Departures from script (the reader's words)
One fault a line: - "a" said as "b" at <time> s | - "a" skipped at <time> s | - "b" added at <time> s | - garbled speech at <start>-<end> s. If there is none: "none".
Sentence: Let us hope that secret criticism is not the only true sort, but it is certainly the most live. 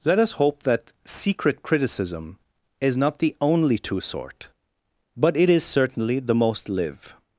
- "true" said as "two" at 3.8 s